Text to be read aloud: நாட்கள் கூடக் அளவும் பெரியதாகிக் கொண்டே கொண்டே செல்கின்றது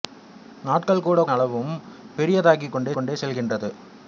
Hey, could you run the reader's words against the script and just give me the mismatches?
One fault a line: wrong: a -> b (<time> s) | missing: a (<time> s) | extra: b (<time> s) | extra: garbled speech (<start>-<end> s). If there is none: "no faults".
no faults